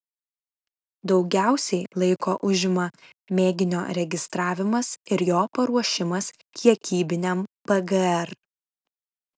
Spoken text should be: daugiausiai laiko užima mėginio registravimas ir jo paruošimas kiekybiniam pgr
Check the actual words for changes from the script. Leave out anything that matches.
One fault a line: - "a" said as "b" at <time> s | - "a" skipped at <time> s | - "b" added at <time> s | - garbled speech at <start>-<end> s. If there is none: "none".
none